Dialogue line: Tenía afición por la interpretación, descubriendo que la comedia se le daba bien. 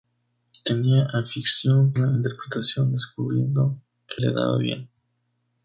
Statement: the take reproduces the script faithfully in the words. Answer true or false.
false